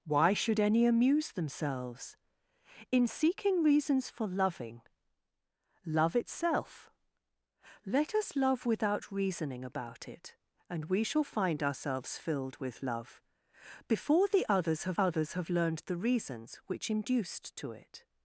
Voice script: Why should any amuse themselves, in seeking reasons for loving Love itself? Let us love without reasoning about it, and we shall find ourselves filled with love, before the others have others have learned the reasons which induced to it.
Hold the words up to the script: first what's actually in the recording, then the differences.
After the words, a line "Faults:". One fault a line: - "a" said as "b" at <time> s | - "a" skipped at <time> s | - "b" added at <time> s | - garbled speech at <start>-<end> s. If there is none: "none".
Why should any amuse themselves, in seeking reasons for loving Love itself? Let us love without reasoning about it, and we shall find ourselves filled with love, before the others have others have learned the reasons which induced to it.
Faults:
none